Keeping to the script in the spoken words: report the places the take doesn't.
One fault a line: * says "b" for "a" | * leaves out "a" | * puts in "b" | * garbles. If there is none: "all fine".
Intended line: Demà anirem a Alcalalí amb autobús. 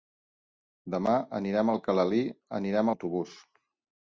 * says "anirem" for "amb"